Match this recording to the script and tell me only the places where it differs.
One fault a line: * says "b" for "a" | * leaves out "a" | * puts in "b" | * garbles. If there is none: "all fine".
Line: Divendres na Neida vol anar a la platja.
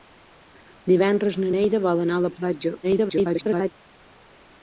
* garbles